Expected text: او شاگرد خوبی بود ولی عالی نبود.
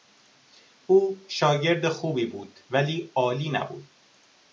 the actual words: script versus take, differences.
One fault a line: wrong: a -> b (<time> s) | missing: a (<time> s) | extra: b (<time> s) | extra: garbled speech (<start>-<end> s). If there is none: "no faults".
no faults